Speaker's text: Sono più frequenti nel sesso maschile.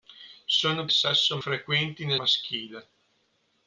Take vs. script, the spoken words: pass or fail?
fail